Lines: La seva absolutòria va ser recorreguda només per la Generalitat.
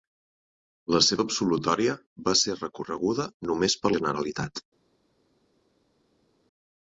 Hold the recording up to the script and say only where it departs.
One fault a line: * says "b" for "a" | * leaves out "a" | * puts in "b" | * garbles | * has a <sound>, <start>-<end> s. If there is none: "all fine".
* leaves out "la"